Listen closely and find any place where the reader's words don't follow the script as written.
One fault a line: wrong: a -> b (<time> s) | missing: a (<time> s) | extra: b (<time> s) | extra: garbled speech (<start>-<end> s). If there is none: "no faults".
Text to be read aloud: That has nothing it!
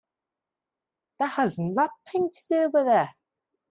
extra: to do with (2.3 s)